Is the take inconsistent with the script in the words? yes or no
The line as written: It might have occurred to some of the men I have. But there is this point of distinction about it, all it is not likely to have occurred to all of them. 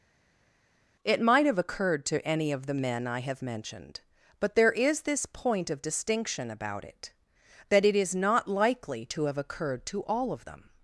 yes